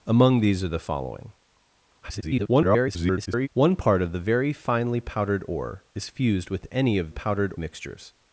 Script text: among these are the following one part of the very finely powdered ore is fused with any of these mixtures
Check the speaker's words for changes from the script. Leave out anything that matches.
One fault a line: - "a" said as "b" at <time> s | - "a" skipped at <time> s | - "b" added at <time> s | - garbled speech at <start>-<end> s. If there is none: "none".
- garbled speech at 2.0-3.5 s
- "these" said as "powdered" at 7.1 s